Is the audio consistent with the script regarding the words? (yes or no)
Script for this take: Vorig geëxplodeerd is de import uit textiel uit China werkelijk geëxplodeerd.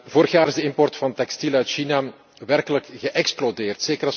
no